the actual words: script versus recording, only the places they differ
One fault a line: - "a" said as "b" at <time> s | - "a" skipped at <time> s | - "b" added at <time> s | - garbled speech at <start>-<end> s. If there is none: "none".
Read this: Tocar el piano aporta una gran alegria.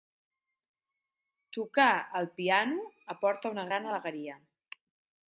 none